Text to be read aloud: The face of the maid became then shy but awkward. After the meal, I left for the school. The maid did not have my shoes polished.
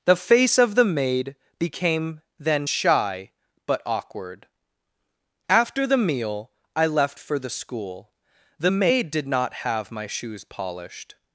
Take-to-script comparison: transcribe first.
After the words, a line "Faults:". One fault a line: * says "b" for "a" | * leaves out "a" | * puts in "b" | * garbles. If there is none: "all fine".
The face of the maid became then shy but awkward. After the meal, I left for the school. The maid did not have my shoes polished.
Faults:
all fine